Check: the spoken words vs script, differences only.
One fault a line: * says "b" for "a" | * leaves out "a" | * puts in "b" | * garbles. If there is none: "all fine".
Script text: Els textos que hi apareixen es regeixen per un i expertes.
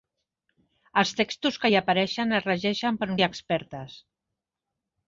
all fine